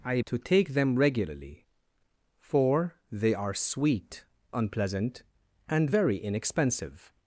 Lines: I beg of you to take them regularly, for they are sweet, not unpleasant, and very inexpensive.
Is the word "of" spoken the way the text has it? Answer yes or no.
no